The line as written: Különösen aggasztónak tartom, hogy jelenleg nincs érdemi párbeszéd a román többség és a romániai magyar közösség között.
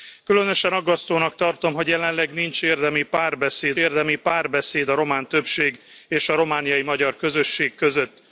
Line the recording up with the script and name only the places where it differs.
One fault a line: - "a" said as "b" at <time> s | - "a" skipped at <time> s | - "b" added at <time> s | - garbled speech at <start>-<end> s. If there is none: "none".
- "érdemi párbeszéd" added at 3.8 s